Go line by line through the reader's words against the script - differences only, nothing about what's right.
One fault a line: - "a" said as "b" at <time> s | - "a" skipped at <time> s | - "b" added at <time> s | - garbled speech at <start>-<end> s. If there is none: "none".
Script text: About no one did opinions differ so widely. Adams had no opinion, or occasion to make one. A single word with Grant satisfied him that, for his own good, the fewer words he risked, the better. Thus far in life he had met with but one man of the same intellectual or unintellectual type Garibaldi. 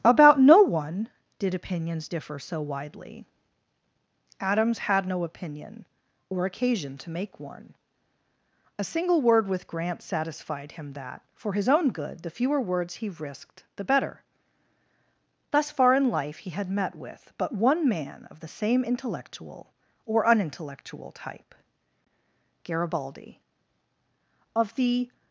- "Of the" added at 24.5 s